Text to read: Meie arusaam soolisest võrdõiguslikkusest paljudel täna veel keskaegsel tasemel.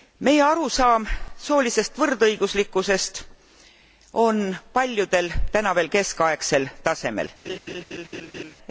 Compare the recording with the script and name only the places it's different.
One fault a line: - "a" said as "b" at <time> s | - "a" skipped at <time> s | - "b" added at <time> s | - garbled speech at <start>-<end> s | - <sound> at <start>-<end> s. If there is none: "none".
- "on" added at 4.2 s
- laugh at 7.4-8.5 s